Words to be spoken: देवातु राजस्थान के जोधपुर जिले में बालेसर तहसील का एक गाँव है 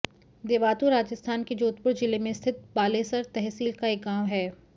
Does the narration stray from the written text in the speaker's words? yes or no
yes